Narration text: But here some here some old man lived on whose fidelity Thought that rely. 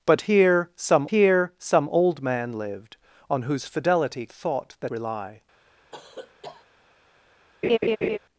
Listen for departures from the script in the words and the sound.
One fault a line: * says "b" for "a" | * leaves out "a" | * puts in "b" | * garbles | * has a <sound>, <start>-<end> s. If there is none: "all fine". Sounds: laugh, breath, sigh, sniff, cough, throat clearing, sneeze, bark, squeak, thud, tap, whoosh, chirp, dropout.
* has a cough, 5.9-6.7 s
* has a laugh, 7.6-8.2 s